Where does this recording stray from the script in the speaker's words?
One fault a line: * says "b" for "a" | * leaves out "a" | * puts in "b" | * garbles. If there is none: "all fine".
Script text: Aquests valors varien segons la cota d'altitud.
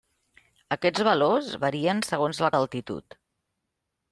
* leaves out "cota"